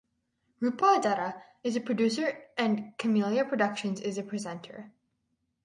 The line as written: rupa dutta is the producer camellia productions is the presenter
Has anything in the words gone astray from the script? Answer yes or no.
yes